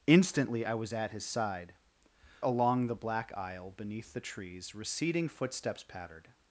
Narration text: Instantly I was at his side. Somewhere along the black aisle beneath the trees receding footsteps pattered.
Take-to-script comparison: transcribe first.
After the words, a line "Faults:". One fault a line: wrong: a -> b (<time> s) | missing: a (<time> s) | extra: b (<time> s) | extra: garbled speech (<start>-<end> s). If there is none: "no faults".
Instantly I was at his side. Along the black aisle beneath the trees receding footsteps pattered.
Faults:
missing: Somewhere (1.7 s)